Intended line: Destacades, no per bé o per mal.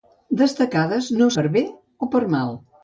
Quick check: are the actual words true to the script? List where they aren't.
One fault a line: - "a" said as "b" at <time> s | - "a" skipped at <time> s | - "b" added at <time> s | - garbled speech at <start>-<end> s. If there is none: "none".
none